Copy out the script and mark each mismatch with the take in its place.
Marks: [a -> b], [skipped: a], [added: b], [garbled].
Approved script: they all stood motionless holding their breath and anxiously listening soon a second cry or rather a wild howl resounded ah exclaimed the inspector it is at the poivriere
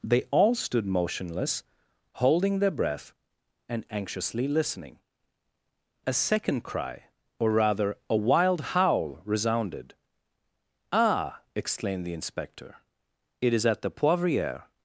they all stood motionless holding their breath and anxiously listening [skipped: soon] a second cry or rather a wild howl resounded ah exclaimed the inspector it is at the poivriere